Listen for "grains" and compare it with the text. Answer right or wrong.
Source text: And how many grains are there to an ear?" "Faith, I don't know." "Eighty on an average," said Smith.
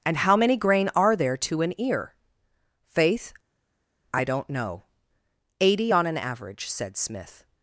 wrong